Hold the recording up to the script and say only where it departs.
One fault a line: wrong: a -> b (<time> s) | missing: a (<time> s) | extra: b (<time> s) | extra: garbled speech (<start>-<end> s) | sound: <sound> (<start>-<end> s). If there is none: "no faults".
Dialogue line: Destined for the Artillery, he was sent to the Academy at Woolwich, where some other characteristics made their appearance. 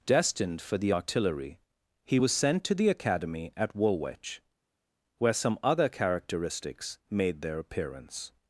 no faults